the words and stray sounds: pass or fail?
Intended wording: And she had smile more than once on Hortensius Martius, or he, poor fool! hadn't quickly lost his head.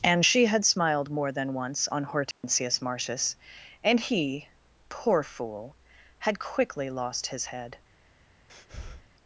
fail